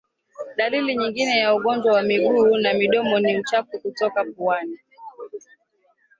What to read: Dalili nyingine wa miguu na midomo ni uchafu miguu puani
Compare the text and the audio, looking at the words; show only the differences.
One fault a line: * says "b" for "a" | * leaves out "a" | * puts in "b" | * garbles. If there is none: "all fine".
* puts in "ya ugonjwa"
* says "kutoka" for "miguu"